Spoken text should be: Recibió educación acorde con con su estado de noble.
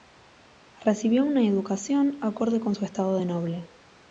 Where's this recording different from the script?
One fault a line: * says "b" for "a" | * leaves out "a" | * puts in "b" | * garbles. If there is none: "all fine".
* puts in "una"
* leaves out "con"